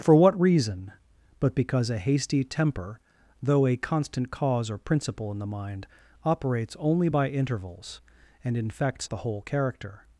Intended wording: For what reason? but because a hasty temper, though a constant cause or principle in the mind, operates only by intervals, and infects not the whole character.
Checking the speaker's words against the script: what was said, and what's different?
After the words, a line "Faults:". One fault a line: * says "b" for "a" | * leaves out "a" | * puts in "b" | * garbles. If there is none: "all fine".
For what reason? but because a hasty temper, though a constant cause or principle in the mind, operates only by intervals, and infects the whole character.
Faults:
* leaves out "not"